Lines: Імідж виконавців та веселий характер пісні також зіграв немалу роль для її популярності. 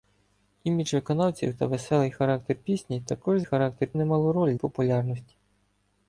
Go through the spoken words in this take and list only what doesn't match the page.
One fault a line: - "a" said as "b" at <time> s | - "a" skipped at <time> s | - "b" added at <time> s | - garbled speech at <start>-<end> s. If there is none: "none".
- "зіграв" said as "характер" at 3.4 s
- "для її" skipped at 4.5 s